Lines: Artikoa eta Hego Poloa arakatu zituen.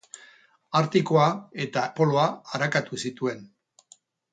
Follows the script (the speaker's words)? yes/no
no